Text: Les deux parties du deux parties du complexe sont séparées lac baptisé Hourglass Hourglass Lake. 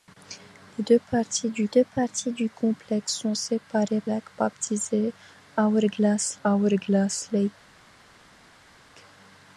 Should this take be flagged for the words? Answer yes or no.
no